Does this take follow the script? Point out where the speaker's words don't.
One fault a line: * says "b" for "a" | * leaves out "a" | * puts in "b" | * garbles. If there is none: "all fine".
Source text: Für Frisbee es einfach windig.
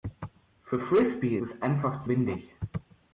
all fine